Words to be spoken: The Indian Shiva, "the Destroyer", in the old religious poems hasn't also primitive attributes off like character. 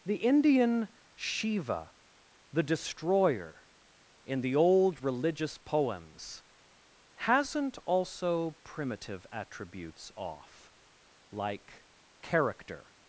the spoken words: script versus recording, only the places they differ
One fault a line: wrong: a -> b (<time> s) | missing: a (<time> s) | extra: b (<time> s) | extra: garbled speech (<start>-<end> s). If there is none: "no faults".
no faults